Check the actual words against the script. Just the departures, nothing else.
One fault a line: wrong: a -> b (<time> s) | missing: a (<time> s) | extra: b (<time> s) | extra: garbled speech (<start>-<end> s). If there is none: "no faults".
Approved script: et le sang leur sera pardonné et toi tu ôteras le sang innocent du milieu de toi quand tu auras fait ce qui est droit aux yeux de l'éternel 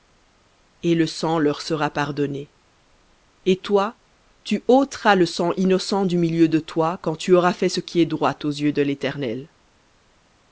no faults